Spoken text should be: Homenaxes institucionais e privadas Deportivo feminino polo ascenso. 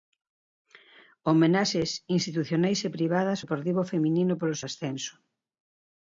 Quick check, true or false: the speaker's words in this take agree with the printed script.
true